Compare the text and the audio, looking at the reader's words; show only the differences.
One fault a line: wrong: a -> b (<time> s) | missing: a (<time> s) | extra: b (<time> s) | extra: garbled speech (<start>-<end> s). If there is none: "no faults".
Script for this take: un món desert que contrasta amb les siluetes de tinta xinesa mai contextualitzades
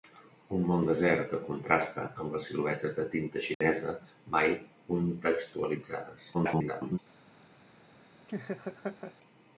extra: garbled speech (6.3-7.0 s)